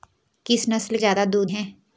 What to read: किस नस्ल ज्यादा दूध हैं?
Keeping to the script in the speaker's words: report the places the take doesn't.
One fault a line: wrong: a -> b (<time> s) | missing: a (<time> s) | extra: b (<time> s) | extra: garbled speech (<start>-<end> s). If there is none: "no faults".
no faults